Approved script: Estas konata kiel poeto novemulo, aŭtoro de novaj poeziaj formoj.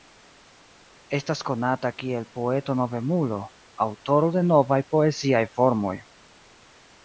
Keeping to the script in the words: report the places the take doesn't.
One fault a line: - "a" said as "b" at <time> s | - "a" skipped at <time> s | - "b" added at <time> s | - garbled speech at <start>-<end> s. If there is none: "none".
none